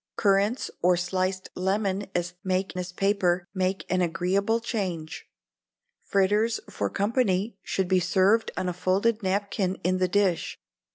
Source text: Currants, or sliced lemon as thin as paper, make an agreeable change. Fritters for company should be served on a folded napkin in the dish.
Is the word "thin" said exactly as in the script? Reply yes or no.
no